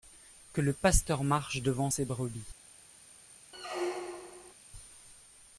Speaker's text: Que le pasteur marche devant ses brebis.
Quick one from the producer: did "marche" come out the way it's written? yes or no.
yes